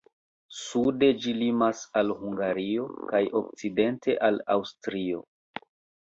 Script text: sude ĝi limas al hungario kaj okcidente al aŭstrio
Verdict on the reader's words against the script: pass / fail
pass